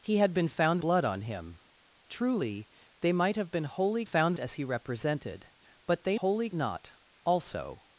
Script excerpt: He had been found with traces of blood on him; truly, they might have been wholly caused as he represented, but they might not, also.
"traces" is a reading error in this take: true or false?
true